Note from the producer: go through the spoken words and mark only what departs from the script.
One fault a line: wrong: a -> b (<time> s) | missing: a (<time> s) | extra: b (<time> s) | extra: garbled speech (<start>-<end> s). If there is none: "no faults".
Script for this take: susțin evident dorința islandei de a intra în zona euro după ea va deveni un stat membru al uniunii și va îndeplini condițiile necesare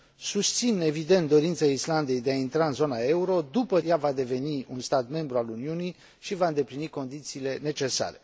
no faults